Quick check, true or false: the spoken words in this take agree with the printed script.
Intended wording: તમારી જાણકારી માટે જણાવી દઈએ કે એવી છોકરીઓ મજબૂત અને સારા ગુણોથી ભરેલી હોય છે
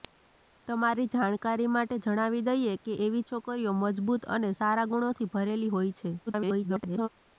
false